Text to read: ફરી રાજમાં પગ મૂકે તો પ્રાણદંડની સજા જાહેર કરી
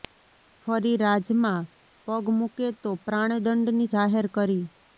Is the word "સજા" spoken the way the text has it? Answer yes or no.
no